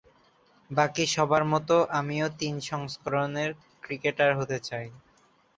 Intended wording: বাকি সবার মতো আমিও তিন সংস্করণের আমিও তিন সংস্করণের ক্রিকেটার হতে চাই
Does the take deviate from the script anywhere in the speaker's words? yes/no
yes